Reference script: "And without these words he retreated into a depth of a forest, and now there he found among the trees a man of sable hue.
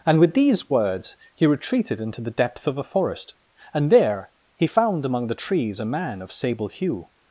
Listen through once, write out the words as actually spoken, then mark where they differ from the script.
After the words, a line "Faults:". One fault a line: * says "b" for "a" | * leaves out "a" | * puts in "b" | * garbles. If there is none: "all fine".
"And with these words he retreated into the depth of a forest, and there he found among the trees a man of sable hue.
Faults:
* says "with" for "without"
* says "the" for "a"
* leaves out "now"